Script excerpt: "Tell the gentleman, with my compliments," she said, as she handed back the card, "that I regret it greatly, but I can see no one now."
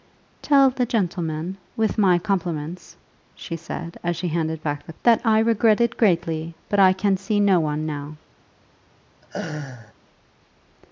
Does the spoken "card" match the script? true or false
false